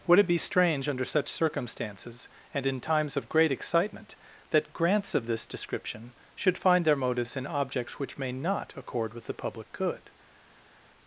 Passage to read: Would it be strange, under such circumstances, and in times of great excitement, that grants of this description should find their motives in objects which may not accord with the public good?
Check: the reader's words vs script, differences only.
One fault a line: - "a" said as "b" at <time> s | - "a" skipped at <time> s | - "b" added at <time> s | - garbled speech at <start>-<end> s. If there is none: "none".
none